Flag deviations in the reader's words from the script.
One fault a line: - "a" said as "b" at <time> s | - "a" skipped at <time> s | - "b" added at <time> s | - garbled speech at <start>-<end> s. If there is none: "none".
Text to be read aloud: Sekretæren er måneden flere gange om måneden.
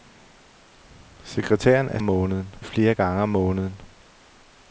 none